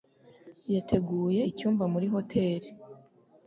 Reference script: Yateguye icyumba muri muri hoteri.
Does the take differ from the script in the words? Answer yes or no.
yes